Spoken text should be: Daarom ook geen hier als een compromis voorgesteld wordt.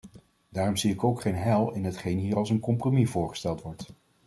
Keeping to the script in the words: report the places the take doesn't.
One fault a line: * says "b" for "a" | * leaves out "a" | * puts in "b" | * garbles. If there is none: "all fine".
* puts in "zie ik"
* puts in "heil in hetgeen"